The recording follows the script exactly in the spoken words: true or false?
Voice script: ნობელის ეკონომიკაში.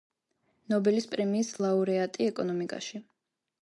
false